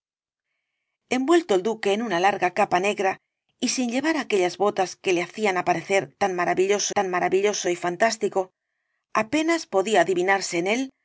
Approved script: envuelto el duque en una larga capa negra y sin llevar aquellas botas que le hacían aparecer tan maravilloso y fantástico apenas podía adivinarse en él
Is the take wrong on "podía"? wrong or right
right